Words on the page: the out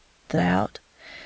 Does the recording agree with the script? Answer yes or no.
yes